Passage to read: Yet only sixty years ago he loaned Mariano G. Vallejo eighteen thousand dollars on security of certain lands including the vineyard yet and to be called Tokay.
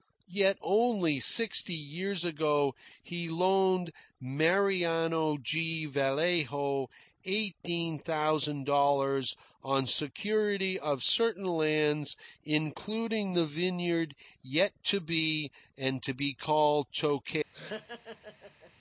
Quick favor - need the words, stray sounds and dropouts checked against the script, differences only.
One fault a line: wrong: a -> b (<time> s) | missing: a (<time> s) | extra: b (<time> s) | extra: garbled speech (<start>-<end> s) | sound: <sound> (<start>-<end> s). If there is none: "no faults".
extra: to be (14.8 s)
sound: laugh (17.5-18.7 s)